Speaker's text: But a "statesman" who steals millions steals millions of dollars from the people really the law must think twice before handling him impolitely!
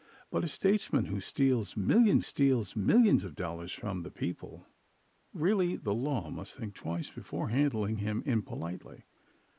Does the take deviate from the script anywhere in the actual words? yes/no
no